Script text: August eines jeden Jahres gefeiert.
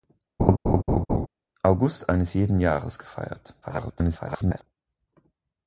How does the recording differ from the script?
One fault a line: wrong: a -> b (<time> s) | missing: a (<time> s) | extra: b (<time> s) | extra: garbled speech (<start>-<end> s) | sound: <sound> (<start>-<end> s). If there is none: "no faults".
sound: laugh (0.4-1.3 s)
extra: garbled speech (3.6-4.7 s)